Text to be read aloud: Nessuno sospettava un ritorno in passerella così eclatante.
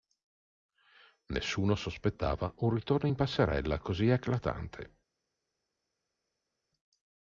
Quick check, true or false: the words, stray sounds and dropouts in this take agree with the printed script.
true